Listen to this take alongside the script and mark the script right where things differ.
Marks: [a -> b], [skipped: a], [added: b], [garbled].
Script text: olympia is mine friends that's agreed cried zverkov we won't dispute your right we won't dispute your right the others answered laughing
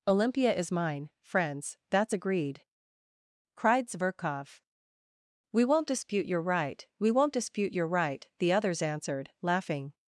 olympia is mine friends that's agreed cried zverkov we won't dispute your right we won't dispute your right the others answered laughing